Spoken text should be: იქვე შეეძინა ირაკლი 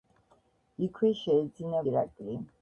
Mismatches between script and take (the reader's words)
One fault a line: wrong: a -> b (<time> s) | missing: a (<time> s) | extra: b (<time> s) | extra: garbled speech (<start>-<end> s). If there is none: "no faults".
no faults